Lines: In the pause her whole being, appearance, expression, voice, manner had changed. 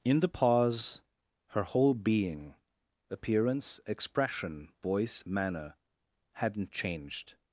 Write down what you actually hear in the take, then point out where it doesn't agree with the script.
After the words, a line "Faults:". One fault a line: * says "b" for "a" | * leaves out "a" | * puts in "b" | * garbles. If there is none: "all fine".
In the pause her whole being, appearance, expression, voice, manner hadn't changed.
Faults:
* says "hadn't" for "had"